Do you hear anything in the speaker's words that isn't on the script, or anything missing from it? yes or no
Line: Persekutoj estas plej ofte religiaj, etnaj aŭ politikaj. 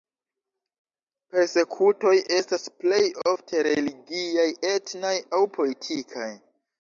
no